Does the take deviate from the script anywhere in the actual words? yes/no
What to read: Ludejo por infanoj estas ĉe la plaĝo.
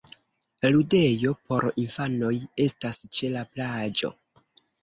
no